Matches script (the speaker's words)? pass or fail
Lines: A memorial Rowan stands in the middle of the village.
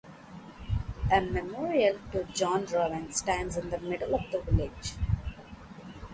fail